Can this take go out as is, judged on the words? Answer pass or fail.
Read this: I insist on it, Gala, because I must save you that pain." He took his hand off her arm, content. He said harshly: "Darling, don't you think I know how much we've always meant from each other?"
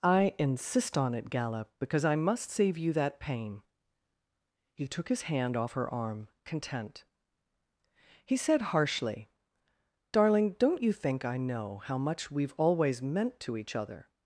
fail